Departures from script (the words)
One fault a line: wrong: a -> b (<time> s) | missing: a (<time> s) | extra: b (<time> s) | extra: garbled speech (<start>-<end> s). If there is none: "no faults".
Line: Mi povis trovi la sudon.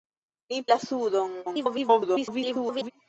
missing: povis trovi (0.6 s)
extra: garbled speech (1.4-2.9 s)